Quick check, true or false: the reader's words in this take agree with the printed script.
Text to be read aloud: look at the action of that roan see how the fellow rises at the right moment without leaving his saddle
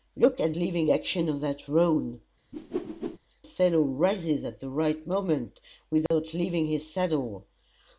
false